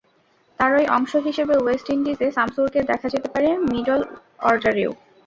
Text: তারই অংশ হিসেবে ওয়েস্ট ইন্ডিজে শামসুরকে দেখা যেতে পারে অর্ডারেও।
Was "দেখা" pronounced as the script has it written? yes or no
yes